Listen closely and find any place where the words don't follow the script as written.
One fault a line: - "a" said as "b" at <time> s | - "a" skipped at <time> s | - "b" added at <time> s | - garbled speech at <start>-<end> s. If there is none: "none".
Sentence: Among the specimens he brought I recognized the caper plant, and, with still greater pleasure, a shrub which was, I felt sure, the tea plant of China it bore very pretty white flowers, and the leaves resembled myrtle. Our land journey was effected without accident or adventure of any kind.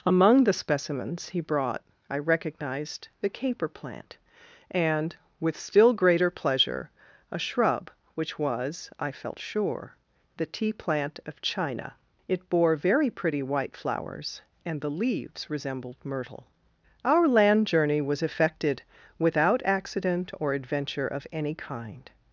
none